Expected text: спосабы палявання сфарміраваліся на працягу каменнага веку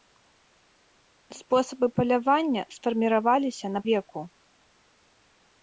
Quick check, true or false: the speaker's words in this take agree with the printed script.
false